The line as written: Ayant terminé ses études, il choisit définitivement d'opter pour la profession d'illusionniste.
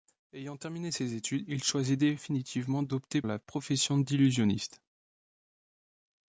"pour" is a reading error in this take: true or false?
true